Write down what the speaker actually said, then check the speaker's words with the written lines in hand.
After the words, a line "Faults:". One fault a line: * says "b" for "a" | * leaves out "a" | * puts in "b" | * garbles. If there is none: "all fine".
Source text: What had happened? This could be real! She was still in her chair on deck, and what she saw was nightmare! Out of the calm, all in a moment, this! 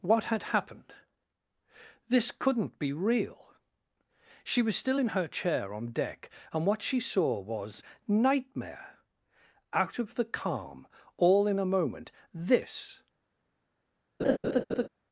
What had happened? This couldn't be real! She was still in her chair on deck, and what she saw was nightmare! Out of the calm, all in a moment, this!
Faults:
* says "couldn't" for "could"